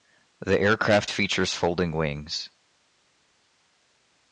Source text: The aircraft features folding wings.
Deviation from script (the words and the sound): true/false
false